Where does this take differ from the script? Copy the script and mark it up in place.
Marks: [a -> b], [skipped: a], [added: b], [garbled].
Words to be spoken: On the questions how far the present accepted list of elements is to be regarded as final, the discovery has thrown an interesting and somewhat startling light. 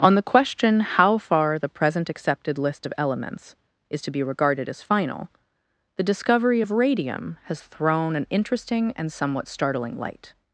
On the [questions -> question] how far the present accepted list of elements is to be regarded as final, the discovery [added: of radium] has thrown an interesting and somewhat startling light.